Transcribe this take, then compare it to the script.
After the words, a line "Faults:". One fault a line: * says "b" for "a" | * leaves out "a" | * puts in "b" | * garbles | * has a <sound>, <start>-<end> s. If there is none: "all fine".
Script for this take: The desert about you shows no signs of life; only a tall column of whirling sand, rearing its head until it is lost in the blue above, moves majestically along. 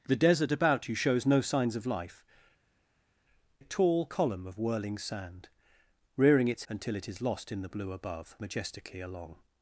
The desert about you shows no signs of life; a tall column of whirling sand, rearing its until it is lost in the blue above, majestically along.
Faults:
* leaves out "only"
* leaves out "head"
* leaves out "moves"